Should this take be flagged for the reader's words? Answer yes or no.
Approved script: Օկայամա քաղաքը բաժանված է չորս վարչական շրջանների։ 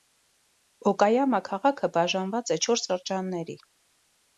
yes